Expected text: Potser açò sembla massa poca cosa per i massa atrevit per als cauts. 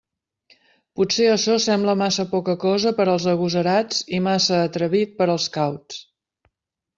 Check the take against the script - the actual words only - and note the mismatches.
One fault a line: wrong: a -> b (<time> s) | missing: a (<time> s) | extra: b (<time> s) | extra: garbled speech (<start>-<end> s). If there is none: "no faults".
extra: als agosarats (3.1 s)